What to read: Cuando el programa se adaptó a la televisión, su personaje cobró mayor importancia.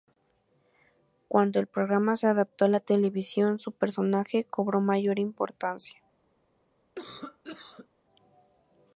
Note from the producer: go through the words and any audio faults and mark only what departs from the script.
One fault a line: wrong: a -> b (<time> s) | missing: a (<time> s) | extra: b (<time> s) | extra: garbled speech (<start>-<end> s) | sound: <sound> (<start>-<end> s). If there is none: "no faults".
sound: cough (7.0-7.9 s)